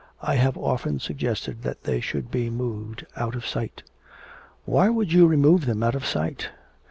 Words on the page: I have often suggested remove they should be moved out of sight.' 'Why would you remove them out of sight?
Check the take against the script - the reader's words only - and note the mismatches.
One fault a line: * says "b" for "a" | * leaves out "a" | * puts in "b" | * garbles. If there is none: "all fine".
* says "that" for "remove"